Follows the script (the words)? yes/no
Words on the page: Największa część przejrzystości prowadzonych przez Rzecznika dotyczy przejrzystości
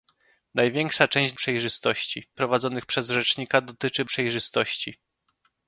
yes